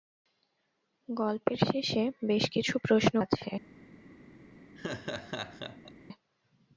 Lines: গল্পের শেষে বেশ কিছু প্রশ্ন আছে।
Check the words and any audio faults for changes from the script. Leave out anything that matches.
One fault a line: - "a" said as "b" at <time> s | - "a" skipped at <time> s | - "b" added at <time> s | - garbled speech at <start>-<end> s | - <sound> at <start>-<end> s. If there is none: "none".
- laugh at 4.8-5.9 s